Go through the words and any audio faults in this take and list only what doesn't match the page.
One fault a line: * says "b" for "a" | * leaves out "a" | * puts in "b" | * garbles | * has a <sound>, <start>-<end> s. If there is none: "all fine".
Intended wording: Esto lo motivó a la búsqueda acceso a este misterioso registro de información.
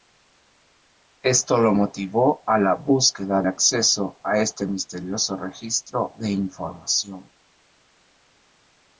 all fine